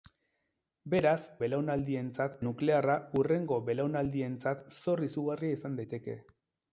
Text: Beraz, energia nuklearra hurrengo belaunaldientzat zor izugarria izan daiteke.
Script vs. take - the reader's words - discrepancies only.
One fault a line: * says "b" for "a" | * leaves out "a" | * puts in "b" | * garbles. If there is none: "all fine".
* says "belaunaldientzat" for "energia"